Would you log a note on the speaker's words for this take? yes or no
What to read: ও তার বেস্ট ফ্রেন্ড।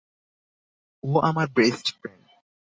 yes